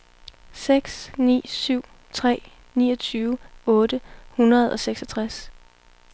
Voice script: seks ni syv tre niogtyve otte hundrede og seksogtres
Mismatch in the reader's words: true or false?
false